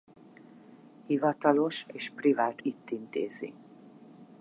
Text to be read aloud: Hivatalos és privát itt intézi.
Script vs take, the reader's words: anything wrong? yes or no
no